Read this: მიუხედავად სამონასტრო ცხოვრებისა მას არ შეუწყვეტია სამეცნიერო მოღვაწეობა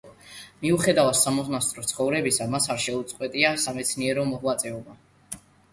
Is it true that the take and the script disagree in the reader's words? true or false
false